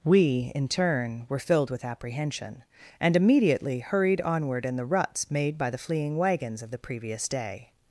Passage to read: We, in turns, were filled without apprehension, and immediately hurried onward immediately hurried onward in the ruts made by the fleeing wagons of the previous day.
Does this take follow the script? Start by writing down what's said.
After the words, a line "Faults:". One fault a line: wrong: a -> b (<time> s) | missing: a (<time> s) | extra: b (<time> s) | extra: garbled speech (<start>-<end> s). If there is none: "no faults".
We, in turn, were filled with apprehension, and immediately hurried onward in the ruts made by the fleeing wagons of the previous day.
Faults:
wrong: turns -> turn (0.7 s)
wrong: without -> with (1.7 s)
missing: immediately hurried onward (4.7 s)